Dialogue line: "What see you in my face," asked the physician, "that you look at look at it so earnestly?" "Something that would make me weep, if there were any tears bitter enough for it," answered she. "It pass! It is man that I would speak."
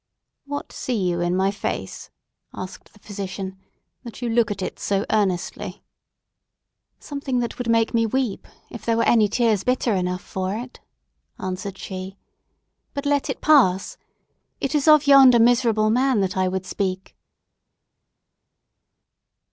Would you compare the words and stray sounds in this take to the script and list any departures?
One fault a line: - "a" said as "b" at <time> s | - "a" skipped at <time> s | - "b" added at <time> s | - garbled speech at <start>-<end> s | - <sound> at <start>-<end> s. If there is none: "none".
- "look at" skipped at 4.6 s
- "But let" added at 12.9 s
- "of yonder miserable" added at 14.9 s